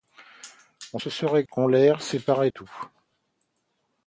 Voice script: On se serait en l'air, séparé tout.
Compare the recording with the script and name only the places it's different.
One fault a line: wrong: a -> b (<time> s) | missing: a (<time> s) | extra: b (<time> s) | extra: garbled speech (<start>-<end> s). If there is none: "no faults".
no faults